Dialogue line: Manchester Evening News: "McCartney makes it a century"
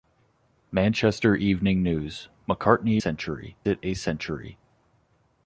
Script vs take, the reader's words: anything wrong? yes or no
yes